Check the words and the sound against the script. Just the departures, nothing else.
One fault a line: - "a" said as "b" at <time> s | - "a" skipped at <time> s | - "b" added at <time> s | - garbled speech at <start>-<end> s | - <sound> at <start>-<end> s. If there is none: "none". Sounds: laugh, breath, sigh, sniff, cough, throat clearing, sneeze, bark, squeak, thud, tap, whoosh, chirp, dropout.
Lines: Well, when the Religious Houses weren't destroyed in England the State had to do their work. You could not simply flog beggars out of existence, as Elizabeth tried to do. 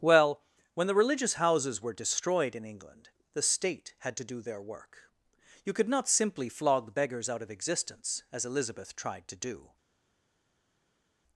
- "weren't" said as "were" at 1.8 s